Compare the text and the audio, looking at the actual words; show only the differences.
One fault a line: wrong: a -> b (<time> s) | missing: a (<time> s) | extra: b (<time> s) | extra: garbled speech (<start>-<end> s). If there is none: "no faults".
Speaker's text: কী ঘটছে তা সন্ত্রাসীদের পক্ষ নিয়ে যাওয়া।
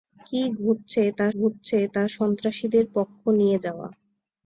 extra: ঘটছে তা (1.3 s)